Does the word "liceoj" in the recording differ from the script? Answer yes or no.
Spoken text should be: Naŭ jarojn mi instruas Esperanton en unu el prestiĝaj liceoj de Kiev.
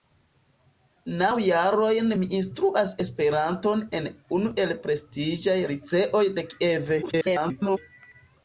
no